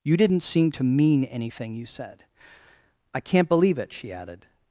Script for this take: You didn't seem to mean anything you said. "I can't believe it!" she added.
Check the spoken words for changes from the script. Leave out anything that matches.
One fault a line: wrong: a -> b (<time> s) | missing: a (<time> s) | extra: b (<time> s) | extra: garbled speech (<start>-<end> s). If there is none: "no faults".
no faults